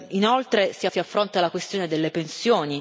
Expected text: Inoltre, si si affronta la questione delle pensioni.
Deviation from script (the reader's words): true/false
false